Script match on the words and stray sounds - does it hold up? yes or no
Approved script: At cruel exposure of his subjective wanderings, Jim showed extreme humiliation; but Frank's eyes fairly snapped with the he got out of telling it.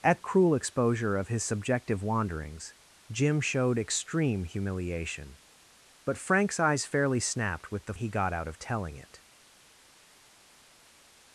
yes